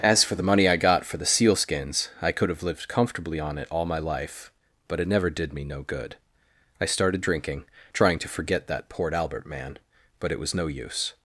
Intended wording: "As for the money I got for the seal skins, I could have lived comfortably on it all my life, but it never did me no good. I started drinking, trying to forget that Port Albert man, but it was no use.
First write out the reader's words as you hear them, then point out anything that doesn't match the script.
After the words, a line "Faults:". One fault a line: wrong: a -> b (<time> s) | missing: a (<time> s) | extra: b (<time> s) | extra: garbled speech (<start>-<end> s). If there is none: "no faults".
"As for the money I got for the seal skins, I could have lived comfortably on it all my life, but it never did me no good. I started drinking, trying to forget that Port Albert man, but it was no use.
Faults:
no faults